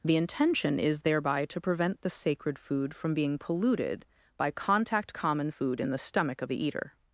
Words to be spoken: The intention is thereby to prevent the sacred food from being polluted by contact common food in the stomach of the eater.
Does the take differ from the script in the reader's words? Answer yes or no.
no